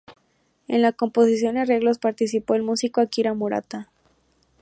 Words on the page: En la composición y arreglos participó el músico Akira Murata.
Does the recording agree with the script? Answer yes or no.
yes